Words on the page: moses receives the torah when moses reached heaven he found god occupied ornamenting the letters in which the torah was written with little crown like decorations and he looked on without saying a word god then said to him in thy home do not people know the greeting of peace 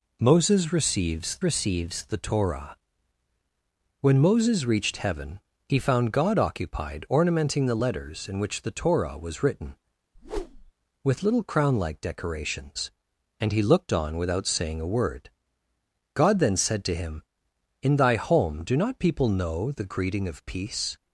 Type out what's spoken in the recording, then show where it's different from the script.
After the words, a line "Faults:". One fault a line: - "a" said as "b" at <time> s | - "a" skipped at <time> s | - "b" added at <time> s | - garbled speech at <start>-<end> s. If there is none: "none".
moses receives receives the torah when moses reached heaven he found god occupied ornamenting the letters in which the torah was written with little crown like decorations and he looked on without saying a word god then said to him in thy home do not people know the greeting of peace
Faults:
- "receives" added at 1.4 s